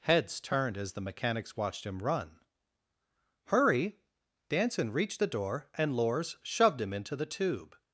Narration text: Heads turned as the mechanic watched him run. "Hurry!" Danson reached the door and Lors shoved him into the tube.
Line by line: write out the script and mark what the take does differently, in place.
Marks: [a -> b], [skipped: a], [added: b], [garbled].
Heads turned as the [mechanic -> mechanics] watched him run. "Hurry!" Danson reached the door and Lors shoved him into the tube.